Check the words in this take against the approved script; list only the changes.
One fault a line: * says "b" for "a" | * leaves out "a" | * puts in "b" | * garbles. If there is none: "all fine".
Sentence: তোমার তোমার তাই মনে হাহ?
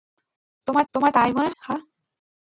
all fine